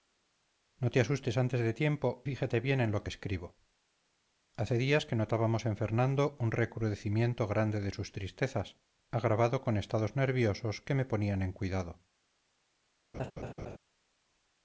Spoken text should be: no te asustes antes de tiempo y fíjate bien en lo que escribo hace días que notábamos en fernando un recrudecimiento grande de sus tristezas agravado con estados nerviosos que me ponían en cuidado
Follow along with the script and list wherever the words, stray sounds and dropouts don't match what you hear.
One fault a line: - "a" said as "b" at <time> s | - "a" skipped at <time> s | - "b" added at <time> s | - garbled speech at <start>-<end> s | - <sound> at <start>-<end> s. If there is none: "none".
- "y" skipped at 2.2 s
- laugh at 13.1-13.8 s